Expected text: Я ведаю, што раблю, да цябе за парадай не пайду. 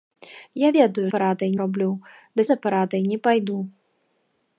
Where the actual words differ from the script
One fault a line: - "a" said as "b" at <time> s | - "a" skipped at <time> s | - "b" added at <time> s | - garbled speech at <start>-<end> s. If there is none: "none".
- "што" said as "парадай" at 1.1 s
- "цябе" skipped at 2.5 s